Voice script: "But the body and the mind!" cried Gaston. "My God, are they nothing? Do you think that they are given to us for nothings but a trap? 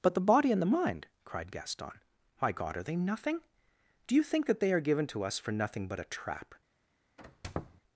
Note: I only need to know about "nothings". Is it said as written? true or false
false